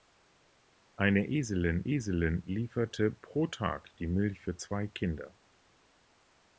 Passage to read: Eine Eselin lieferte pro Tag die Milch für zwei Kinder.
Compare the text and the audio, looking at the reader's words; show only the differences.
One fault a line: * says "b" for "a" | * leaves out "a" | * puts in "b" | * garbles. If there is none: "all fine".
* puts in "Eselin"